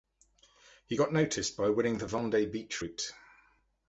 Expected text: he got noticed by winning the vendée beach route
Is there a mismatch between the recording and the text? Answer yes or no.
no